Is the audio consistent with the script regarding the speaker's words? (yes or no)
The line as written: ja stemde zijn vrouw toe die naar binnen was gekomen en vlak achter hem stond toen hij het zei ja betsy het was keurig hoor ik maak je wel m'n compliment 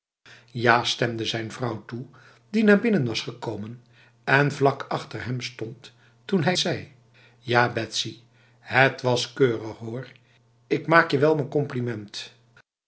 no